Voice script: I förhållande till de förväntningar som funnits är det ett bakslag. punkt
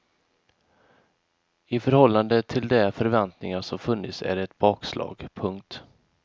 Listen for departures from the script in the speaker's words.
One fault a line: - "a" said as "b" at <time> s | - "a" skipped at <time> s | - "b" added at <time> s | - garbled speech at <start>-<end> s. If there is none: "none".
none